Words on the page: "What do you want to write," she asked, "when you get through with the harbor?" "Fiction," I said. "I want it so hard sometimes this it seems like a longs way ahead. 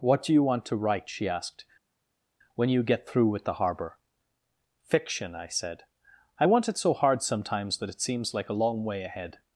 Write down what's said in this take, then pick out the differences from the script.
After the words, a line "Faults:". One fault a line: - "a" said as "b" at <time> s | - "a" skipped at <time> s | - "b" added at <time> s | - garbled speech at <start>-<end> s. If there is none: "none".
"What do you want to write," she asked, "when you get through with the harbor?" "Fiction," I said. "I want it so hard sometimes that it seems like a long way ahead.
Faults:
- "this" said as "that" at 7.8 s
- "longs" said as "long" at 8.5 s